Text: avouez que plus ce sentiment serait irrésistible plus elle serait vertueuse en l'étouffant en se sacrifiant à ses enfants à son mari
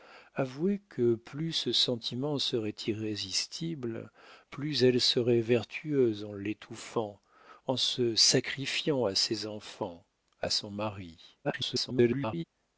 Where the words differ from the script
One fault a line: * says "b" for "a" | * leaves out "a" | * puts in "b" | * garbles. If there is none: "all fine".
* garbles